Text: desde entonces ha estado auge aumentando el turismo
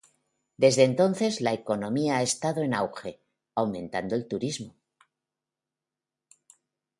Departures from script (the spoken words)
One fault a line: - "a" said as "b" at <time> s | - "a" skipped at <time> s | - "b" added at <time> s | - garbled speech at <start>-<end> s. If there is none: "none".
- "la economía" added at 1.4 s
- "en" added at 2.6 s